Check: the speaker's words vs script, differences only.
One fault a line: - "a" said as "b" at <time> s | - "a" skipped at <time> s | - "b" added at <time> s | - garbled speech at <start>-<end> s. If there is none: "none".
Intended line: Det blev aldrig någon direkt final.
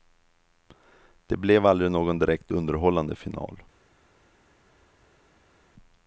- "underhållande" added at 2.5 s